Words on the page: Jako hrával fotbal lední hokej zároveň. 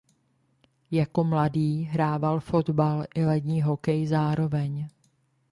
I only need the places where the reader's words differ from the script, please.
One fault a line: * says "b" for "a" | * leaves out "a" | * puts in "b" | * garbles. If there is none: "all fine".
* puts in "mladý"
* puts in "i"